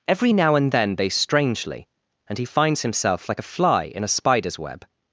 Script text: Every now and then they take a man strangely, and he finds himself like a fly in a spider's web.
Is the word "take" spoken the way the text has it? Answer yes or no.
no